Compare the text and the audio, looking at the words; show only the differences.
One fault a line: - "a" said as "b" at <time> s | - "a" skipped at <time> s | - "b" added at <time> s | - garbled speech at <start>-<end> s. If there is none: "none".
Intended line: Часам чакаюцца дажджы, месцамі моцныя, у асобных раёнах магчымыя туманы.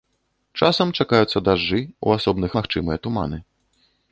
- "месцамі моцныя" skipped at 1.8 s
- "раёнах" skipped at 2.5 s